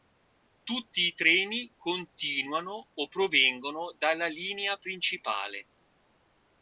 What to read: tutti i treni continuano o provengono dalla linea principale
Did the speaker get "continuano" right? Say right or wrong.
right